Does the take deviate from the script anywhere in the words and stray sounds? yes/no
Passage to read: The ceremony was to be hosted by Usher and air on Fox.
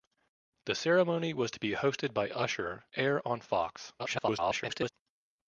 yes